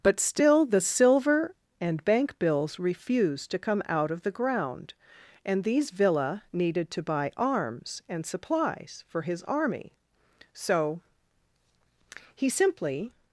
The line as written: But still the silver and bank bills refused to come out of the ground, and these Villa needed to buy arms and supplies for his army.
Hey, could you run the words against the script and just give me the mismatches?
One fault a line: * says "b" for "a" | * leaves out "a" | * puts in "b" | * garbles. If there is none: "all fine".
* puts in "So he simply"